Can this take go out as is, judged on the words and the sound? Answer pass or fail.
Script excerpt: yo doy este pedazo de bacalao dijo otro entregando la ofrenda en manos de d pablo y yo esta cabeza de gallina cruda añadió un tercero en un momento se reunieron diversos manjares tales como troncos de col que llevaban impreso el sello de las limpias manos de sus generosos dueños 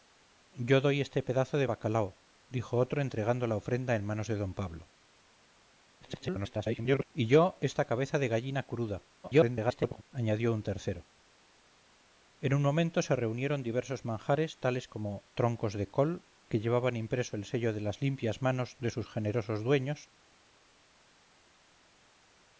fail